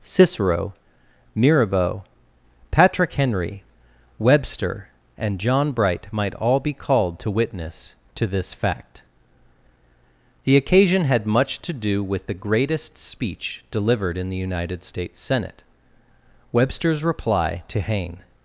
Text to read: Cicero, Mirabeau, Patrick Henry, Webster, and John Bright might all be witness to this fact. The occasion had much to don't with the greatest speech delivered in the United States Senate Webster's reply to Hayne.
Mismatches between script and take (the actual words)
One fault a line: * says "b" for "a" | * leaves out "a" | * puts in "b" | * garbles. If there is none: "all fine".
* puts in "called to"
* says "do" for "don't"